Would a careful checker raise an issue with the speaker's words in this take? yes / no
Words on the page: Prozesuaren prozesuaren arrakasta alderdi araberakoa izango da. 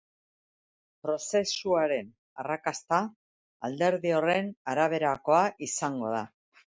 yes